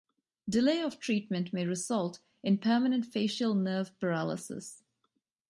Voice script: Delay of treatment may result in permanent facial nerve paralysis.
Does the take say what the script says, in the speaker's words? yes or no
yes